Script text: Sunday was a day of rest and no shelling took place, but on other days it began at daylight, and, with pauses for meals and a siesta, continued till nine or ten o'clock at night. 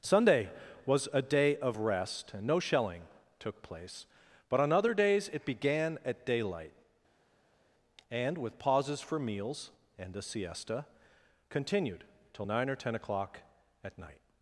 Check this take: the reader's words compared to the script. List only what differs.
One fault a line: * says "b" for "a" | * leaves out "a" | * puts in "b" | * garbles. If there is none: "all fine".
all fine